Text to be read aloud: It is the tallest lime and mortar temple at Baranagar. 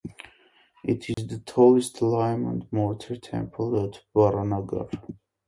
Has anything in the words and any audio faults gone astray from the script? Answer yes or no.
yes